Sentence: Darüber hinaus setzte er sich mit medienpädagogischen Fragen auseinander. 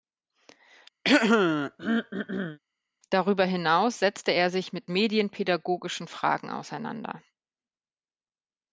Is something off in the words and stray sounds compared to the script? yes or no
yes